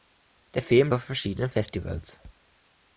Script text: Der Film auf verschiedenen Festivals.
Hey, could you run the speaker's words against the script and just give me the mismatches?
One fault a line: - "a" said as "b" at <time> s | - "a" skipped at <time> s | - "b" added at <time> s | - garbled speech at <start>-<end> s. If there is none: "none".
none